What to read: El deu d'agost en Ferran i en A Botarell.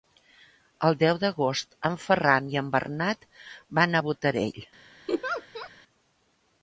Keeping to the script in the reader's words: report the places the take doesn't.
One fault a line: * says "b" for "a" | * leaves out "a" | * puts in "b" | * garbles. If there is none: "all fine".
* puts in "Bernat van"